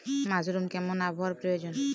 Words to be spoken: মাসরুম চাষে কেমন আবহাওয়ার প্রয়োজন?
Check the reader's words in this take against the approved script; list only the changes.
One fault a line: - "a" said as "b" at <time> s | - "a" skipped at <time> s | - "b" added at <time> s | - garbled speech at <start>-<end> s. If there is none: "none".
- "চাষে" skipped at 0.7 s